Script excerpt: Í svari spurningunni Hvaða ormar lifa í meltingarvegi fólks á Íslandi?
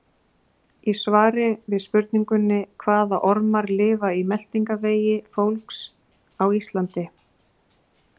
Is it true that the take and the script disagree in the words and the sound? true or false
true